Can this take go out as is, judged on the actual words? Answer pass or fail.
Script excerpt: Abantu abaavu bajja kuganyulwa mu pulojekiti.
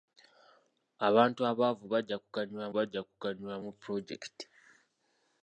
fail